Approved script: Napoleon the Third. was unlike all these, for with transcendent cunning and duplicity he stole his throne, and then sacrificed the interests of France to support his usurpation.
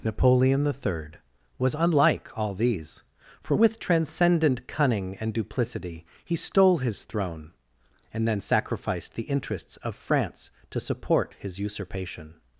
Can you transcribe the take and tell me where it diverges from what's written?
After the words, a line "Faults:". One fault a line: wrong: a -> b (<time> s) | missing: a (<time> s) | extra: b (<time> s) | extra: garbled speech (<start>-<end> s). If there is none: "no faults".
Napoleon the Third. was unlike all these, for with transcendent cunning and duplicity he stole his throne, and then sacrificed the interests of France to support his usurpation.
Faults:
no faults